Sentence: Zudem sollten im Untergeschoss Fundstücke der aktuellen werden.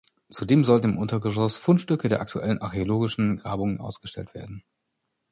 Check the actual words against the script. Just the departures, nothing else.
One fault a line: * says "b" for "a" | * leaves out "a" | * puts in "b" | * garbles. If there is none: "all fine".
* puts in "archäologischen Grabungen ausgestellt"